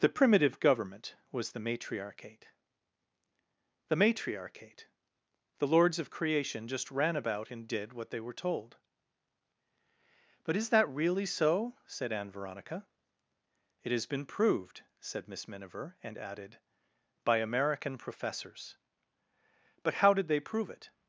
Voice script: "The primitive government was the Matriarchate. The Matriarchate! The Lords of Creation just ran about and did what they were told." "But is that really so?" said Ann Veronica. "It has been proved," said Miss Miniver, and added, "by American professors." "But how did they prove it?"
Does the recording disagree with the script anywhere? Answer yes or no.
no